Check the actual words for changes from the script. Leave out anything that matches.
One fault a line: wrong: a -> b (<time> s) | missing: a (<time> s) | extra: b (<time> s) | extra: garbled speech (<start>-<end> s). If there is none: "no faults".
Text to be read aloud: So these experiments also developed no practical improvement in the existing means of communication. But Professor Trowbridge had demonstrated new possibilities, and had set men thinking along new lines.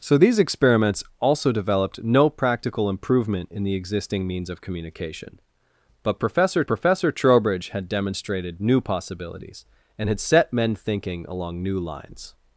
extra: Professor (6.7 s)